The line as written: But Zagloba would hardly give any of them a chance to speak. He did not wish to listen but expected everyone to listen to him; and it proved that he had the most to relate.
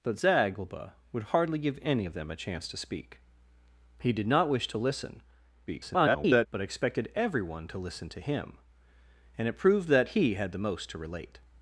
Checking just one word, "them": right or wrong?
right